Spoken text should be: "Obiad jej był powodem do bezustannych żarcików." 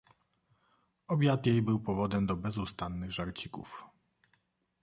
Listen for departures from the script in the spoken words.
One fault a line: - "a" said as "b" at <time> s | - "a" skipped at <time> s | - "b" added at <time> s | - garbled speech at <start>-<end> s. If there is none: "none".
none